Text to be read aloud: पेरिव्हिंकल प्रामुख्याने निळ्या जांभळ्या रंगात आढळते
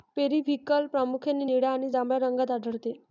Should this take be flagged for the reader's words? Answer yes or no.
yes